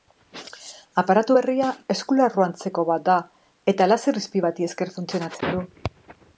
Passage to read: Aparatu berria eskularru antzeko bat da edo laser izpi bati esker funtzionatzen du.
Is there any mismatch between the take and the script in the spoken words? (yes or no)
yes